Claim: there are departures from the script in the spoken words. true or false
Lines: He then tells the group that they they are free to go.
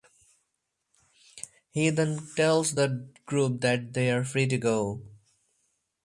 true